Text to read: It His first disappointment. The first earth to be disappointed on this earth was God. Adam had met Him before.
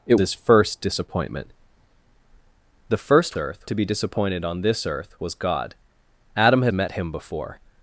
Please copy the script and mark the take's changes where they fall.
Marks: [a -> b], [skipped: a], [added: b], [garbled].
It His first disappointment. The first earth to be disappointed on this earth was God. Adam had met Him before.